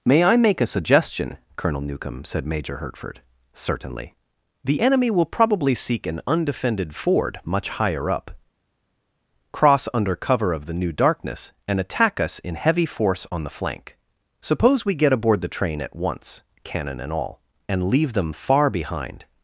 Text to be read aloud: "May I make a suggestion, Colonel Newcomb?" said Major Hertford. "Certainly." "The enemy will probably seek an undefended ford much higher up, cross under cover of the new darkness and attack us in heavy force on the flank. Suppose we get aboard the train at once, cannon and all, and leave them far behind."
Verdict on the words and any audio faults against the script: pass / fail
pass